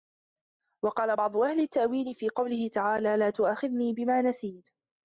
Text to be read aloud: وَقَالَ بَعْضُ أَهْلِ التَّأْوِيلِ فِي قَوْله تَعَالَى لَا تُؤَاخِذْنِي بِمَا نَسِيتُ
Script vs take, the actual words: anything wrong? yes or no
no